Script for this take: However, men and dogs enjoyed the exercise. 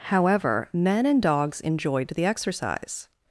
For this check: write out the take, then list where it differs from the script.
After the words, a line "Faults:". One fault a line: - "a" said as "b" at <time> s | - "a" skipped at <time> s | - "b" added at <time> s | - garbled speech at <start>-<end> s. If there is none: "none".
However, men and dogs enjoyed the exercise.
Faults:
none